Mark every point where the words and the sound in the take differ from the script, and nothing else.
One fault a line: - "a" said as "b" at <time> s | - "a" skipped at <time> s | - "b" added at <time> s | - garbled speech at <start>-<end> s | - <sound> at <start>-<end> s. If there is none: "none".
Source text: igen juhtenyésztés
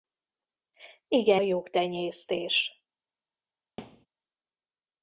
- thud at 3.8-4.1 s